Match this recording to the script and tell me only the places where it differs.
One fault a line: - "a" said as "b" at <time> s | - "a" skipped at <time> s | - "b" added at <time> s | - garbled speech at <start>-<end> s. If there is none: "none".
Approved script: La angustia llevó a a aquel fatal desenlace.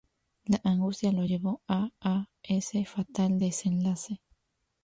- "lo" added at 1.1 s
- "aquel" said as "ese" at 2.4 s